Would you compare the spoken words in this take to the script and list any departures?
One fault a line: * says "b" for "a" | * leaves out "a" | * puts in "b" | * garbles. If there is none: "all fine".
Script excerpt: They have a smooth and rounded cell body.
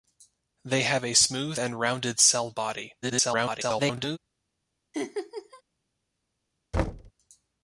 * garbles